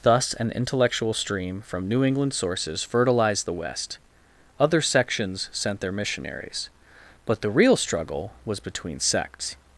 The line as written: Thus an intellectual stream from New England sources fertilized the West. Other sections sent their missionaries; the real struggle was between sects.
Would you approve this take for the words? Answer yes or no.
no